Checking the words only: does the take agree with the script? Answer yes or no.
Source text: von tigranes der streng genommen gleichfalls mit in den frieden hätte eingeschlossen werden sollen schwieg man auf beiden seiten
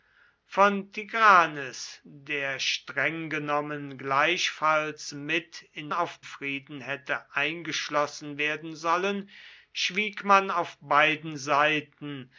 no